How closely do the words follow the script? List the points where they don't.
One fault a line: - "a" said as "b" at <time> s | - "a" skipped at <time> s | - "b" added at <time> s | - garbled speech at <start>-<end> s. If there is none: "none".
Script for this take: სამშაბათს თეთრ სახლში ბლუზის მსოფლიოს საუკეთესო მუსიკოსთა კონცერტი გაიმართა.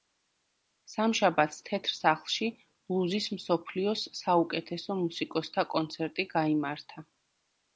none